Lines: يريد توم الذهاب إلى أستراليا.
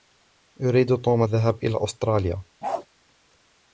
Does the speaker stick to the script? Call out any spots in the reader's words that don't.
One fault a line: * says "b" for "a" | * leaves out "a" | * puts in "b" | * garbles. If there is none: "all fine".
all fine